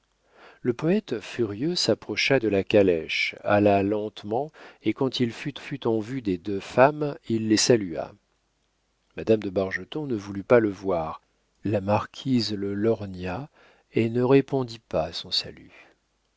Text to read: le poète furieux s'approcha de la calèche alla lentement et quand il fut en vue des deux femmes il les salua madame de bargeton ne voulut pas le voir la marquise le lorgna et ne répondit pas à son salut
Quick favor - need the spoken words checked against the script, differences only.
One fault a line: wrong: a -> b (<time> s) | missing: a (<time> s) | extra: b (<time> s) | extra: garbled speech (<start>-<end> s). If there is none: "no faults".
extra: fut (5.6 s)